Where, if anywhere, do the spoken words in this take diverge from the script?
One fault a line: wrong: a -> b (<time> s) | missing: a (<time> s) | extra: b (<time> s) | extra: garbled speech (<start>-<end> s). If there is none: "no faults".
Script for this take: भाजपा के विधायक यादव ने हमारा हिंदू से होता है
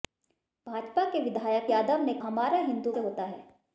no faults